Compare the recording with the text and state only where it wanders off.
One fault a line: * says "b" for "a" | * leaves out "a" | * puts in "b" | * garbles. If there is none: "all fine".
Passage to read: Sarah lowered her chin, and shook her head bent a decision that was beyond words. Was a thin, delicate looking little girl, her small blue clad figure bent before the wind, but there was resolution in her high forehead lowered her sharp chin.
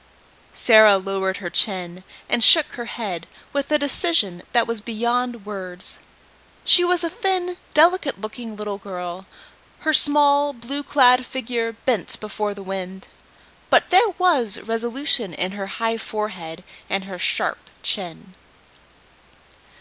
* says "with" for "bent"
* puts in "She"
* says "and" for "lowered"